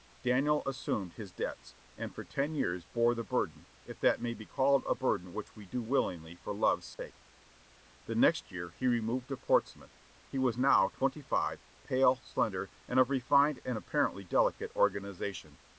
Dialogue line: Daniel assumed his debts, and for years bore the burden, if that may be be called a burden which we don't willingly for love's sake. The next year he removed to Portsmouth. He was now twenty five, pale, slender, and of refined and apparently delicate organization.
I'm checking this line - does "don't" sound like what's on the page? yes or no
no